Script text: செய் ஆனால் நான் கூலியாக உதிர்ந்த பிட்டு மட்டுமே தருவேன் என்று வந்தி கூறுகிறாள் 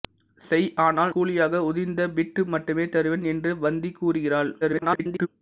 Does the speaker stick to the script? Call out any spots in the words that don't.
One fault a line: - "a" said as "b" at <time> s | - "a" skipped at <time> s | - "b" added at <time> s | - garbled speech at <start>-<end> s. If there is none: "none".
- "நான்" skipped at 1.1 s
- garbled speech at 4.6-5.3 s